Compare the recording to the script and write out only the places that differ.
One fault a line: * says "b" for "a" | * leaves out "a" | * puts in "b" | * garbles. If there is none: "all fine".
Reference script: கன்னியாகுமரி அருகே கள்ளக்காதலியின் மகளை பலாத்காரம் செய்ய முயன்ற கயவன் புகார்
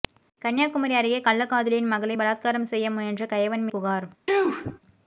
all fine